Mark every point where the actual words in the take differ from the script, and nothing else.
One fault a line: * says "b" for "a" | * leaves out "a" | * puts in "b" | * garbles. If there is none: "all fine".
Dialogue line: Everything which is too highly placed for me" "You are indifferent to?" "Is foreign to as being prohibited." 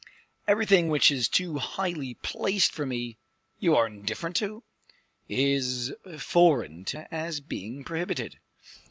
all fine